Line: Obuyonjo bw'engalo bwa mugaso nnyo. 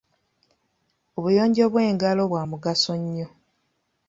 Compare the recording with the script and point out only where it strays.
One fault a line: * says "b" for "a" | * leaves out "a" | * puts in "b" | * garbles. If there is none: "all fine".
all fine